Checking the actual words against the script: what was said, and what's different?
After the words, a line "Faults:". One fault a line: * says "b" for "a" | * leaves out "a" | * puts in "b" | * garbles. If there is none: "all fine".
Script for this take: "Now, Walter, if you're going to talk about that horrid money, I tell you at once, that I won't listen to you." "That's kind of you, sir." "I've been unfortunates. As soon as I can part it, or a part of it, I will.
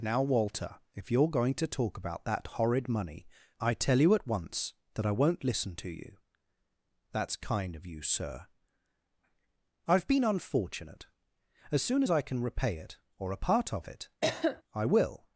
"Now, Walter, if you're going to talk about that horrid money, I tell you at once, that I won't listen to you." "That's kind of you, sir." "I've been unfortunate. As soon as I can repay it, or a part of it, I will.
Faults:
* says "unfortunate" for "unfortunates"
* says "repay" for "part"